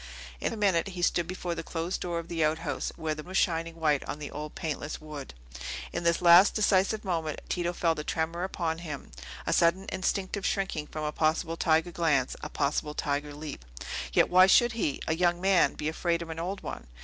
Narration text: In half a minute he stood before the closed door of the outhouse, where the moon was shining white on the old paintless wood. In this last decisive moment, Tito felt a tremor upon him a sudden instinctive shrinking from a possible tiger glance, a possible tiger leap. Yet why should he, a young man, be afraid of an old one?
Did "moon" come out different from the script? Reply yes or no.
yes